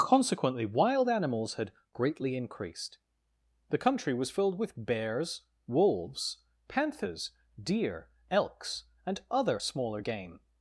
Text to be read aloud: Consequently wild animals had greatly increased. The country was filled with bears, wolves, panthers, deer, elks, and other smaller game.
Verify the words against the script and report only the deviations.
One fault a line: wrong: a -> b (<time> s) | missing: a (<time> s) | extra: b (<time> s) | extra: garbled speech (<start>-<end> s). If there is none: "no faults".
no faults